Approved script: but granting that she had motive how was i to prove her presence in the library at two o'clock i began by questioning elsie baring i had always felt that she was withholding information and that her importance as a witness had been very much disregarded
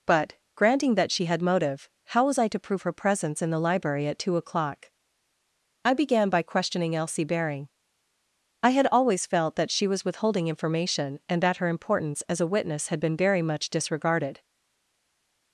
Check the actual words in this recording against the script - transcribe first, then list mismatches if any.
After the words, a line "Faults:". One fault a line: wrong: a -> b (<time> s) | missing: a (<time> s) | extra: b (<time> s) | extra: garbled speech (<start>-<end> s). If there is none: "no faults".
but granting that she had motive how was i to prove her presence in the library at two o'clock i began by questioning elsie baring i had always felt that she was withholding information and that her importance as a witness had been very much disregarded
Faults:
no faults